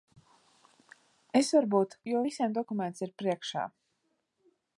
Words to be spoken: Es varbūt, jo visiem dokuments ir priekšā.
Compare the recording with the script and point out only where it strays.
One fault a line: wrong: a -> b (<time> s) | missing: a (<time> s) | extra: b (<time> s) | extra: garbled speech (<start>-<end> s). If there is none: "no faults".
no faults